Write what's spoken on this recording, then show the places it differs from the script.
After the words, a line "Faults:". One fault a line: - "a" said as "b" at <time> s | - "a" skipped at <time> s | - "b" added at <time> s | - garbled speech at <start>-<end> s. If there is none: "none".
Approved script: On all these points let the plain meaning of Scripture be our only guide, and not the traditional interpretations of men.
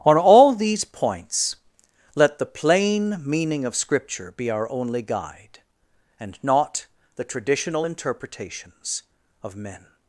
On all these points let the plain meaning of Scripture be our only guide, and not the traditional interpretations of men.
Faults:
none